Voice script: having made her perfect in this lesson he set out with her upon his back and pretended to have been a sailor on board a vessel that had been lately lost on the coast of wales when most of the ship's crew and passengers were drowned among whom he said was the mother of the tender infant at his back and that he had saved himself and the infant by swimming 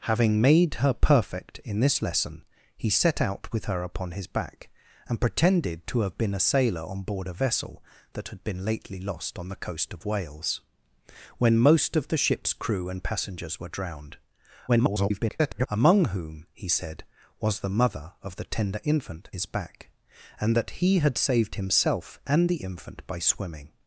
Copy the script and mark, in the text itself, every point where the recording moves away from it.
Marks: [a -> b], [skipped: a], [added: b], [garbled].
having made her perfect in this lesson he set out with her upon his back and pretended to have been a sailor on board a vessel that had been lately lost on the coast of wales when most of the ship's crew and passengers were drowned [garbled] among whom he said was the mother of the tender infant [skipped: at] his back and that he had saved himself and the infant by swimming